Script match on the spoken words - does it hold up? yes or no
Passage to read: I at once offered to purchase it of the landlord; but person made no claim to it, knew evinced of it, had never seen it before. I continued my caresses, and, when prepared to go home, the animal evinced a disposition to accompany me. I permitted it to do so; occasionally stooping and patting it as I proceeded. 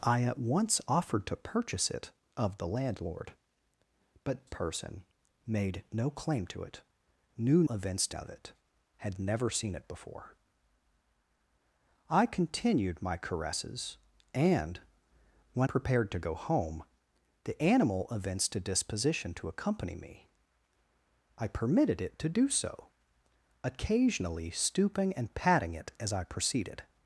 yes